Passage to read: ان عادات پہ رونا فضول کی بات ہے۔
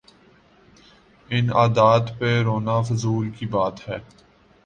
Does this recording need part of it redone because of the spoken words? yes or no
no